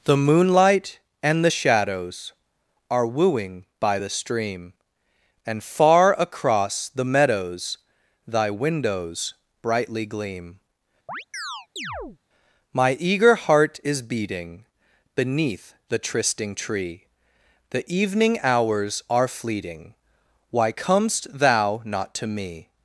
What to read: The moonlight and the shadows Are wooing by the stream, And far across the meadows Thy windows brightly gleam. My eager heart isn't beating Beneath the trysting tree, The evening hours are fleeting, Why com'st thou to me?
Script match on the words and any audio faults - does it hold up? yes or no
no